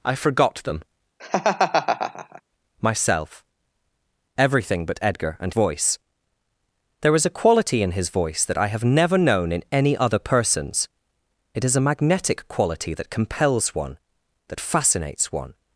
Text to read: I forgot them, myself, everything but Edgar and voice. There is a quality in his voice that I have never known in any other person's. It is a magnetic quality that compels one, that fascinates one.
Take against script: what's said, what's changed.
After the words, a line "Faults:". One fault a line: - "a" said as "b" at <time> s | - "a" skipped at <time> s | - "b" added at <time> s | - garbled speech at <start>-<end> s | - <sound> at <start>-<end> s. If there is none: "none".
I forgot them, myself, everything but Edgar and voice. There is a quality in his voice that I have never known in any other person's. It is a magnetic quality that compels one, that fascinates one.
Faults:
- laugh at 1.2-2.4 s